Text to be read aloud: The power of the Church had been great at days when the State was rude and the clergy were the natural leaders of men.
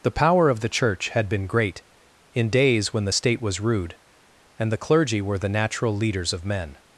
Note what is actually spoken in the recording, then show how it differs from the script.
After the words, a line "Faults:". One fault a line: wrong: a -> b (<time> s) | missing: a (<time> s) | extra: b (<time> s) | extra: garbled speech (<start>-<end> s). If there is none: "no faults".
The power of the Church had been great in days when the State was rude and the clergy were the natural leaders of men.
Faults:
wrong: at -> in (2.3 s)